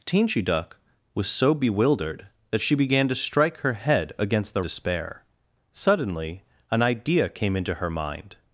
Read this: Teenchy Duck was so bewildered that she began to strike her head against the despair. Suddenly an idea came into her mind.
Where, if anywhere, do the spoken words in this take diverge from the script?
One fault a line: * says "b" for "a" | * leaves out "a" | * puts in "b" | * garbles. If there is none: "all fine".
all fine